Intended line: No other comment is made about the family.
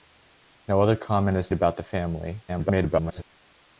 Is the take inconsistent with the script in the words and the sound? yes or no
yes